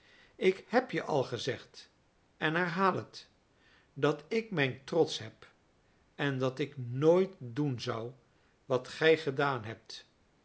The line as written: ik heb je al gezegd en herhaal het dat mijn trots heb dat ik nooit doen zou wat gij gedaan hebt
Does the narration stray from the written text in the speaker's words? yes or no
yes